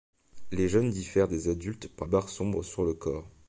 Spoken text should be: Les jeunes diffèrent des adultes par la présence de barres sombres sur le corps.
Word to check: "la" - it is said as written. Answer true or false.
false